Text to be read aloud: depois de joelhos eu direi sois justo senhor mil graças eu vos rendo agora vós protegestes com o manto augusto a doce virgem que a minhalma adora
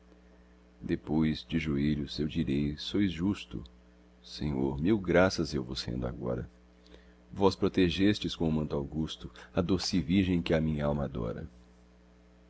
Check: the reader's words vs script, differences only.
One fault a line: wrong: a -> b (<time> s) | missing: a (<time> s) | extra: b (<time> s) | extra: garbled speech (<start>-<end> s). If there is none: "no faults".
no faults